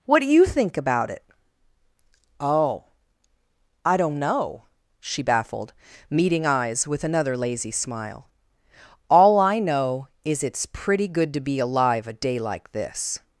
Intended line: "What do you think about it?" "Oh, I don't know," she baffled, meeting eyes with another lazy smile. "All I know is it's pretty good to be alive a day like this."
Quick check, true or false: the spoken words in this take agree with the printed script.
true